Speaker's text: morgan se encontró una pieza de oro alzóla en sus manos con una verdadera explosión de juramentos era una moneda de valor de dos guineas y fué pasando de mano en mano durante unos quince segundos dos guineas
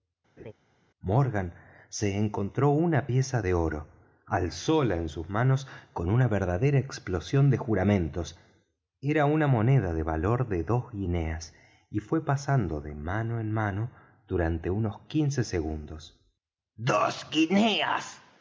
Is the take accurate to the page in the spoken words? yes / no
yes